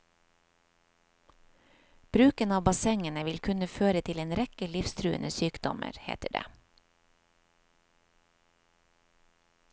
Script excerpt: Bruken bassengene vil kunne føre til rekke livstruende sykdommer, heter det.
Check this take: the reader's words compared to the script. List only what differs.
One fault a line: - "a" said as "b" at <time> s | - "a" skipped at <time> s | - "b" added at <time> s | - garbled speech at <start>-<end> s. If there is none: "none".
- "av" added at 2.5 s
- "en" added at 4.2 s